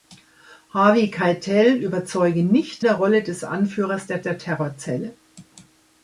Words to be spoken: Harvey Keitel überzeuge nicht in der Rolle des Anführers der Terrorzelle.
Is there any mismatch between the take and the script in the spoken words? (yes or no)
yes